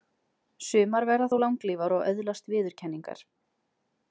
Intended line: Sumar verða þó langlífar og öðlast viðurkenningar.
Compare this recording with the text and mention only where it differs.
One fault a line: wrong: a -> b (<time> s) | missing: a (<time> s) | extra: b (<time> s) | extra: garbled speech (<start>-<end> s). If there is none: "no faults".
no faults